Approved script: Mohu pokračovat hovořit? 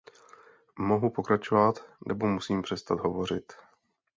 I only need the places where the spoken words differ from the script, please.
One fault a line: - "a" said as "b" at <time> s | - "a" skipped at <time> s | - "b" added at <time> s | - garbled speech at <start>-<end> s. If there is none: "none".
- "nebo musím přestat" added at 2.1 s